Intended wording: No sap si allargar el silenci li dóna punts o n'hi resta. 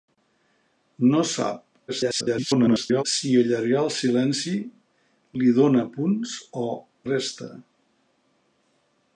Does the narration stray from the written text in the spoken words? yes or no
yes